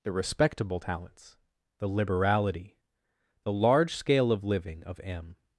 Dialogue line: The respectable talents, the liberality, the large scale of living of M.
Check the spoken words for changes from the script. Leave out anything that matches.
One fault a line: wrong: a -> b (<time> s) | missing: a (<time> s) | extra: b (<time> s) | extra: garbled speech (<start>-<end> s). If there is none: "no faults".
no faults